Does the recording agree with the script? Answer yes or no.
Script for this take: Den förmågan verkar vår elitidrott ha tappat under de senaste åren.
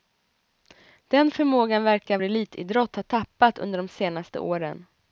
no